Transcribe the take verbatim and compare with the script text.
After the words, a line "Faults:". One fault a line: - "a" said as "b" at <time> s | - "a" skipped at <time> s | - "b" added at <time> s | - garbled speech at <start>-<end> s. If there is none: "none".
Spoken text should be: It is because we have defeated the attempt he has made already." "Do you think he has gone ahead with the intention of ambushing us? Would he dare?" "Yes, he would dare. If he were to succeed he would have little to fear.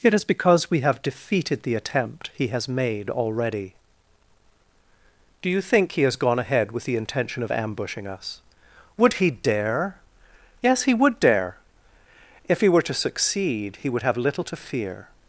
It is because we have defeated the attempt he has made already." "Do you think he has gone ahead with the intention of ambushing us? Would he dare?" "Yes, he would dare. If he were to succeed he would have little to fear.
Faults:
none